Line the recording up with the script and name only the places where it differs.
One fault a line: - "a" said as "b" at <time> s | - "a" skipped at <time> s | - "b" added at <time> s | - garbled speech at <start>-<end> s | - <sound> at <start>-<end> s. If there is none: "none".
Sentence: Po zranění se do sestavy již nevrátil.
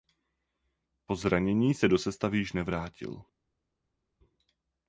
none